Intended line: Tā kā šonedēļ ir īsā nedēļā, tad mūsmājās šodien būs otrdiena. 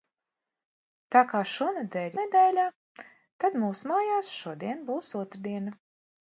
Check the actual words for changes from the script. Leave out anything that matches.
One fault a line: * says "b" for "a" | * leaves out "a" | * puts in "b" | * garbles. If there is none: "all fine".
* leaves out "ir īsā"